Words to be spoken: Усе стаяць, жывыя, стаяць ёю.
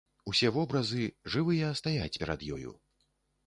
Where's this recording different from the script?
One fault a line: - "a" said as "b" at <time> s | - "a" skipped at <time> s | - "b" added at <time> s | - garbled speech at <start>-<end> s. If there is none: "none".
- "стаяць" said as "вобразы" at 0.6 s
- "перад" added at 2.2 s